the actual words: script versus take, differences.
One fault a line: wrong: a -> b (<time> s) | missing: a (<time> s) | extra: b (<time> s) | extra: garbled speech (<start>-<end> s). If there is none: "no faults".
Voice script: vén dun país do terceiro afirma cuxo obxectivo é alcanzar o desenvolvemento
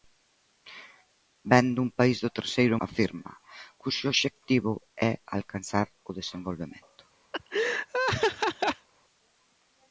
no faults